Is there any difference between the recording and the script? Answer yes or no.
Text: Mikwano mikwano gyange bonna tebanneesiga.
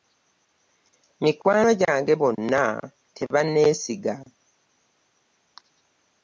yes